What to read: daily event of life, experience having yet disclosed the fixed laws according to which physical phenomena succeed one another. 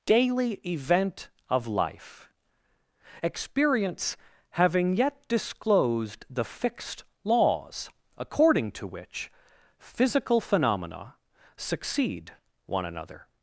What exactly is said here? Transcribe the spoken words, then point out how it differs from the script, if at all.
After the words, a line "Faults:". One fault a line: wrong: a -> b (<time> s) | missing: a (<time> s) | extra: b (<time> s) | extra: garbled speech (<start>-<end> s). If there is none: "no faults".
daily event of life, experience having yet disclosed the fixed laws according to which physical phenomena succeed one another.
Faults:
no faults